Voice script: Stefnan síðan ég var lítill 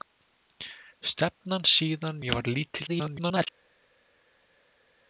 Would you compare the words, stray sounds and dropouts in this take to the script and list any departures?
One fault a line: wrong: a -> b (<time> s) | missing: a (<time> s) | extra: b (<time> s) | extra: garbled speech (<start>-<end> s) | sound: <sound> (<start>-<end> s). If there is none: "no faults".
extra: garbled speech (2.9-3.5 s)